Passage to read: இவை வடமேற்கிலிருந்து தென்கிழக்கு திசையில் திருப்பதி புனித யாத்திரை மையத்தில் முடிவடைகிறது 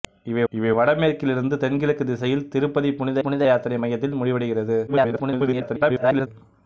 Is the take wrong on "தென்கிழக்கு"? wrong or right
right